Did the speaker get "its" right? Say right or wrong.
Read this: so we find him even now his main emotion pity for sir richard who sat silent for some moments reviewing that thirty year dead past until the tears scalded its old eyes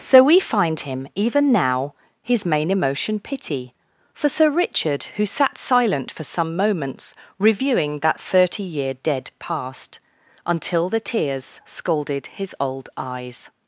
wrong